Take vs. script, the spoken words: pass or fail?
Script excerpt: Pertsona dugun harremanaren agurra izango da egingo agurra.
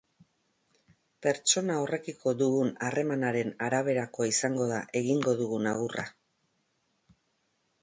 fail